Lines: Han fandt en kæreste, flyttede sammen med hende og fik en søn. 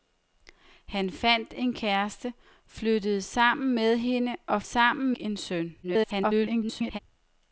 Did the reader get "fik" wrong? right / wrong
wrong